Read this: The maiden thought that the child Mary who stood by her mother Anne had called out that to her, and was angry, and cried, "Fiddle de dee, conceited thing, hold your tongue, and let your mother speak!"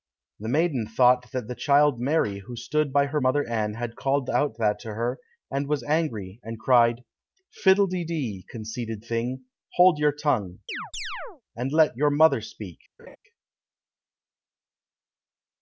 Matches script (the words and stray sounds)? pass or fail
fail